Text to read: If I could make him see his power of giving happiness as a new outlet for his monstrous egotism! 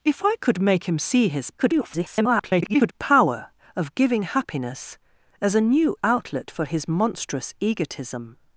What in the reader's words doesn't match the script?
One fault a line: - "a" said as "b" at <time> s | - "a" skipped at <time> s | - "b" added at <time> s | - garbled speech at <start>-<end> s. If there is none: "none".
- garbled speech at 1.6-2.9 s